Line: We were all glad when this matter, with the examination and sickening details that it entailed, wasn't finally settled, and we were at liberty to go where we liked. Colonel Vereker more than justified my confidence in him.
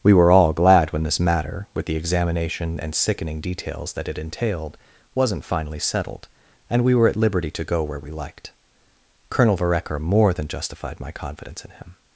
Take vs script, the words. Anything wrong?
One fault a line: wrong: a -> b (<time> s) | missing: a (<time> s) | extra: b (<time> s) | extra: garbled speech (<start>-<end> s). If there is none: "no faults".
no faults